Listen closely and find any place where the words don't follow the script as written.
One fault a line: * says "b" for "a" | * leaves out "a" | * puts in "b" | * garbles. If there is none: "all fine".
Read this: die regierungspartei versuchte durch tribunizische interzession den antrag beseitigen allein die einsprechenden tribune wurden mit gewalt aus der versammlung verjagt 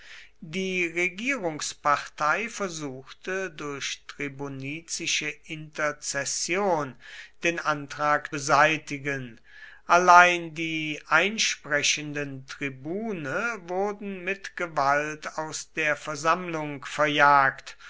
all fine